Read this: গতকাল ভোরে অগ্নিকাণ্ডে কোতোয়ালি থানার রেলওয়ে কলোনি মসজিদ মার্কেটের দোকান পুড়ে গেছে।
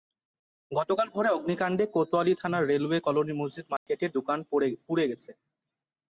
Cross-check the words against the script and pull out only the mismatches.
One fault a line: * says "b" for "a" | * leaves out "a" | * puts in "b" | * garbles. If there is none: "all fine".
all fine